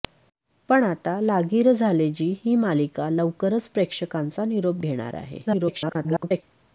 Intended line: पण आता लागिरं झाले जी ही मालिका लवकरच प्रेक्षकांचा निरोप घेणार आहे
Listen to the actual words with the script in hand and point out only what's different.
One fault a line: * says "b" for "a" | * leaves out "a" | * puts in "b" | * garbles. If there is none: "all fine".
* garbles